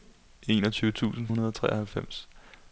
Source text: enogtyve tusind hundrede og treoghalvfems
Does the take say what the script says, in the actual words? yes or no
yes